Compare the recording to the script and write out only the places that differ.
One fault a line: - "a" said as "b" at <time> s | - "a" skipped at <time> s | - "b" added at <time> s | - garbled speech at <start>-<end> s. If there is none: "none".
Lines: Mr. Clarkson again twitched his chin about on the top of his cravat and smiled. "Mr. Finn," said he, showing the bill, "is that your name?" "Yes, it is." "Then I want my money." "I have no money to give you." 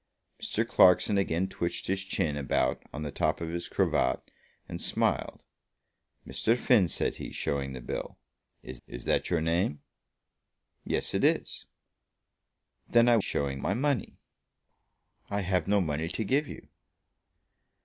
- "is" added at 8.9 s
- "want" said as "showing" at 13.2 s